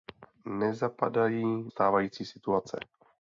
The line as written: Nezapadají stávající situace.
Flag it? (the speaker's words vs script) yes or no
no